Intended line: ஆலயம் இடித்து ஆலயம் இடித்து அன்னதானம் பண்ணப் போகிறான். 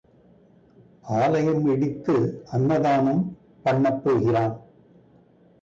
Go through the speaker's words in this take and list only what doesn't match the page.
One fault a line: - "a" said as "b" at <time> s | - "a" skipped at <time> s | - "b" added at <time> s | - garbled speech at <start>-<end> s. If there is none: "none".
- "ஆலயம் இடித்து" skipped at 2.1 s